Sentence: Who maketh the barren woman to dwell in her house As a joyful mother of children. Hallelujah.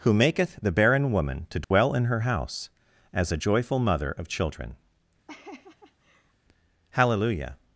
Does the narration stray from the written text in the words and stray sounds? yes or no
yes